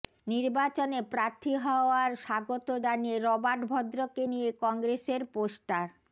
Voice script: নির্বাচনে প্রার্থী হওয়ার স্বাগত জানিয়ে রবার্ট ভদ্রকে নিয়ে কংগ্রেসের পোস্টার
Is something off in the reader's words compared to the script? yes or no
no